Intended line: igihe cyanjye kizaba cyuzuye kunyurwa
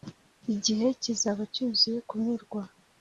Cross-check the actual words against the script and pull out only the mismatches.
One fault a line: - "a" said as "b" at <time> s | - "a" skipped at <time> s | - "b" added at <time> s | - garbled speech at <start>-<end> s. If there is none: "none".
- "cyanjye" skipped at 0.9 s